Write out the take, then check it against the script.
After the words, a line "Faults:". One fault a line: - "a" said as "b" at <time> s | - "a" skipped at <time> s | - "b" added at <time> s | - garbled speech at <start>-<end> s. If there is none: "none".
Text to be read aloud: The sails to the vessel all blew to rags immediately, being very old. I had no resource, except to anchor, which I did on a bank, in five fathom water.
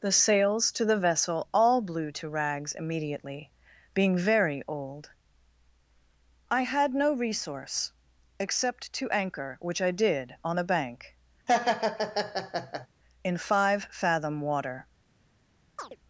The sails to the vessel all blew to rags immediately, being very old. I had no resource, except to anchor, which I did on a bank, in five fathom water.
Faults:
none